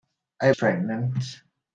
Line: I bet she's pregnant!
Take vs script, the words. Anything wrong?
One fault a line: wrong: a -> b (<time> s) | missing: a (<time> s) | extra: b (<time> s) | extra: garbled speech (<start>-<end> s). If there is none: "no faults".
missing: bet she's (0.5 s)